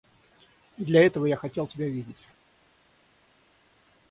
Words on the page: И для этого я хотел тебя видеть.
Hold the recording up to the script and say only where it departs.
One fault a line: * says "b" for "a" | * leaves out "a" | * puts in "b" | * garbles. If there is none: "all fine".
all fine